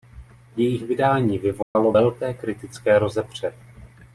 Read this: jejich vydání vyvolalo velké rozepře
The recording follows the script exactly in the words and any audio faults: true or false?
false